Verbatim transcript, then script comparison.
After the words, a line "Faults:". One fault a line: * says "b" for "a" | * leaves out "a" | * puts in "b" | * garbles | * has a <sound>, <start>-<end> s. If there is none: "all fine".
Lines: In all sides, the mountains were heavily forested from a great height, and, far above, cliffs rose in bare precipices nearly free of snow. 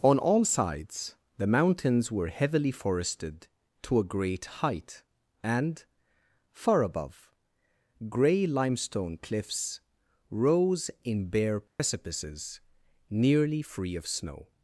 On all sides, the mountains were heavily forested to a great height, and, far above, gray limestone cliffs rose in bare precipices nearly free of snow.
Faults:
* says "On" for "In"
* says "to" for "from"
* puts in "gray limestone"
* has a dropout, 11.7-11.8 s